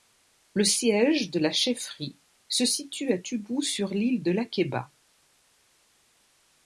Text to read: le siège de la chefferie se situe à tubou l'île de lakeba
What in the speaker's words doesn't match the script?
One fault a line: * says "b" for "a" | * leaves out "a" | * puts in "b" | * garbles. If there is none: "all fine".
* puts in "sur"